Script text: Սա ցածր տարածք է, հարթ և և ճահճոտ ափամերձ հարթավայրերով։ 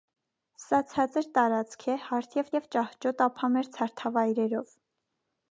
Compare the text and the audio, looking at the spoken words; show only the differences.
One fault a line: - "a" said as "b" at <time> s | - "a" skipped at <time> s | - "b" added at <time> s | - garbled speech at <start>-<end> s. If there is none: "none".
none